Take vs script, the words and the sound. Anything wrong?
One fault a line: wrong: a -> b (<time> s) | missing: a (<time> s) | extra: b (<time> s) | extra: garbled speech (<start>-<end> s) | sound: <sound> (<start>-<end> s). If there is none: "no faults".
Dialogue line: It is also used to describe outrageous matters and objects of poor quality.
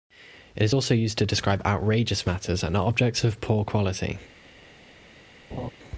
sound: laugh (5.5-5.7 s)